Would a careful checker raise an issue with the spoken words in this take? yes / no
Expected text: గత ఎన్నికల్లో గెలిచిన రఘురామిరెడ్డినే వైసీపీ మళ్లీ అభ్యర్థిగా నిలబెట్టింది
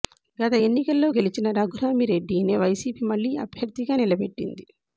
no